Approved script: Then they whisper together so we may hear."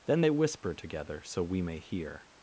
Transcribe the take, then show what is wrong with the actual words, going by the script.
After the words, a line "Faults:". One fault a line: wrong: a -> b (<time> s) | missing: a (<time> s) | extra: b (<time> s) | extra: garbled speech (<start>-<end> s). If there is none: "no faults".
Then they whisper together so we may hear."
Faults:
no faults